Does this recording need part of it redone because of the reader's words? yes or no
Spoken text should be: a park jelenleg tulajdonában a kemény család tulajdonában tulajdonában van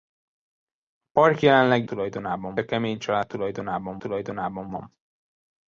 no